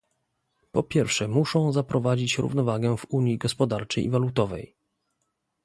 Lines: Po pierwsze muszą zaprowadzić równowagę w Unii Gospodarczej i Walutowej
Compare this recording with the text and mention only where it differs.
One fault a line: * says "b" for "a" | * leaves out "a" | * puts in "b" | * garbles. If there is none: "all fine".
all fine